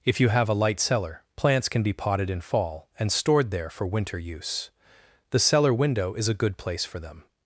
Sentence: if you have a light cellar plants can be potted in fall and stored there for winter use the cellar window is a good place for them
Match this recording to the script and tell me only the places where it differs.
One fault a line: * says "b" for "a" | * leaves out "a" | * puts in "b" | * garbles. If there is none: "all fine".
all fine